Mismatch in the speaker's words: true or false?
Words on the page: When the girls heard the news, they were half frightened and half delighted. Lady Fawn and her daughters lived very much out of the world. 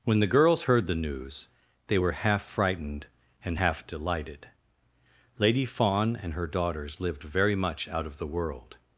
false